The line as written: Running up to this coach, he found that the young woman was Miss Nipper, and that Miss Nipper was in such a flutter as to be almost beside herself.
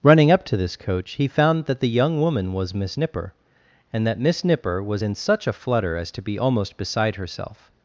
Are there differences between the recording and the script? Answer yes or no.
no